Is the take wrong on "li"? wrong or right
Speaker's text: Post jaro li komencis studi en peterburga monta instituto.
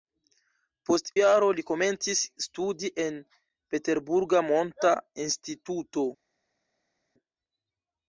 right